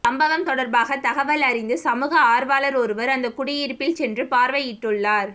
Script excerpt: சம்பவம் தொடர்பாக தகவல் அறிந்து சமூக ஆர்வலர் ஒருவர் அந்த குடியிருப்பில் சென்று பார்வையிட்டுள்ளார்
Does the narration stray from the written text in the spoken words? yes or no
no